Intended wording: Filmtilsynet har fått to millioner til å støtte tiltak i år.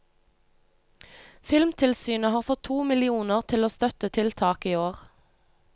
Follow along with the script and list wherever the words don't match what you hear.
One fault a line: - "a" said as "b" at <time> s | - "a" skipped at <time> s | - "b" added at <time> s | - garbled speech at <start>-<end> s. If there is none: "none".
none